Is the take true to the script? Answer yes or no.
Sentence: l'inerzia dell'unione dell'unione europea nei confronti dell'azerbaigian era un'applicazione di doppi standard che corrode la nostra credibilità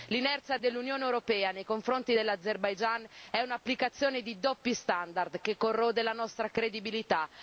no